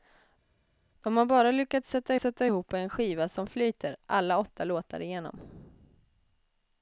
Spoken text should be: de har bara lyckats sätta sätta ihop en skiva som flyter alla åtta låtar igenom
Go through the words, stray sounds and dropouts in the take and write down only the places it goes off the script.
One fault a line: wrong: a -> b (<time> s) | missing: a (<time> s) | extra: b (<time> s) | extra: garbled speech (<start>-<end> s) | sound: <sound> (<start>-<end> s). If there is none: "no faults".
no faults